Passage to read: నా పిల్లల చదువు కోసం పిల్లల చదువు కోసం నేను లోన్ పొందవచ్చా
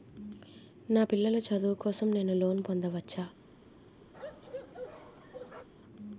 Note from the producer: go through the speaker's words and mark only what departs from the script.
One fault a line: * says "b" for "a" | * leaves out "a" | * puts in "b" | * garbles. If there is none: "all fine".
* leaves out "పిల్లల చదువు కోసం"